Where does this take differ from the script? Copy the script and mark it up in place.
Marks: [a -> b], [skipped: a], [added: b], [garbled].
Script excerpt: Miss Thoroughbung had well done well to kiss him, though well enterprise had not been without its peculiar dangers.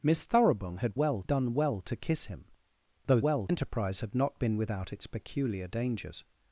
Miss Thoroughbung had well done well to kiss him, though well enterprise had not been without its peculiar dangers.